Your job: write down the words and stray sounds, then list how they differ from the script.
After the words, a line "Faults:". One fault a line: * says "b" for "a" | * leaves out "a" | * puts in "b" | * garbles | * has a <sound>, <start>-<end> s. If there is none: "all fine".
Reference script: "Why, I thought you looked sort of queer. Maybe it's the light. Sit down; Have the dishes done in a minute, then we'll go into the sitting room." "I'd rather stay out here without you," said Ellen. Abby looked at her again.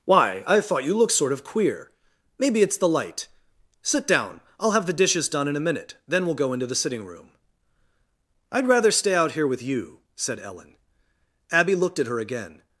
"Why, I thought you looked sort of queer. Maybe it's the light. Sit down; I'll have the dishes done in a minute, then we'll go into the sitting room." "I'd rather stay out here with you," said Ellen. Abby looked at her again.
Faults:
* puts in "I'll"
* says "with" for "without"